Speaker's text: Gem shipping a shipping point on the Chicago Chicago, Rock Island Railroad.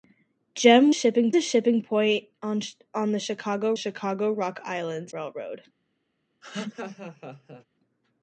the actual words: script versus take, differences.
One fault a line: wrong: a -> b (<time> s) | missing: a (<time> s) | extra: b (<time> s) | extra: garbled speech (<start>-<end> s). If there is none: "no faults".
no faults